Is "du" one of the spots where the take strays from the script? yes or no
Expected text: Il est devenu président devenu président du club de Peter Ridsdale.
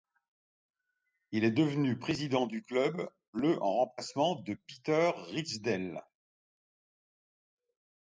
yes